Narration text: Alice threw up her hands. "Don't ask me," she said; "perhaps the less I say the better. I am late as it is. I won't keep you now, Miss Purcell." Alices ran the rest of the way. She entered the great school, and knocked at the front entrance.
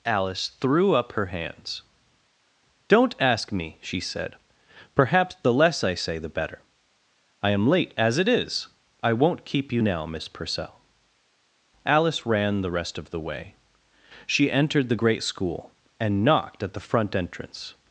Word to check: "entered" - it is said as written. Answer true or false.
true